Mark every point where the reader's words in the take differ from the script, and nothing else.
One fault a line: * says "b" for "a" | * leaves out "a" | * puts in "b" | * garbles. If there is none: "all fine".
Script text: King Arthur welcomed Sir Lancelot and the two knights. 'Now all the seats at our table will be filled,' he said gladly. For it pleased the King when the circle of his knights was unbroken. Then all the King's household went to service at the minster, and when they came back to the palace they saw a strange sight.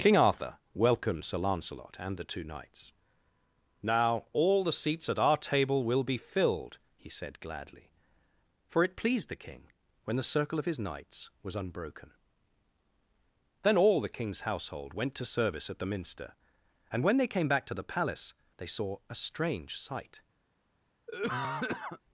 all fine